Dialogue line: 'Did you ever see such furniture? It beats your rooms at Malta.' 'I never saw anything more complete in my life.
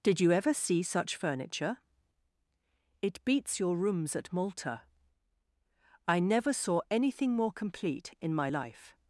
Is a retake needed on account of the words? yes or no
no